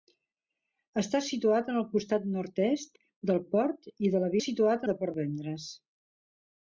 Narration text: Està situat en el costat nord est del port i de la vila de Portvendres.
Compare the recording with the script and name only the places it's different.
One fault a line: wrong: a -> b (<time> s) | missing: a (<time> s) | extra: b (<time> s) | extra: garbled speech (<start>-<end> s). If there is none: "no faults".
wrong: vila -> situat (4.4 s)